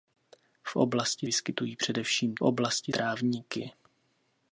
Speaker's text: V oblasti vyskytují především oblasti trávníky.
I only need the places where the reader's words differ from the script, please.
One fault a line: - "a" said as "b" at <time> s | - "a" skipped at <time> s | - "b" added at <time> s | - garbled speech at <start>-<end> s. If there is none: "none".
none